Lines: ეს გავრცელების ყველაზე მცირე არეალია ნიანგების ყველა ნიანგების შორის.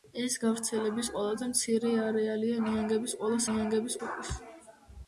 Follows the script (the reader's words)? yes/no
yes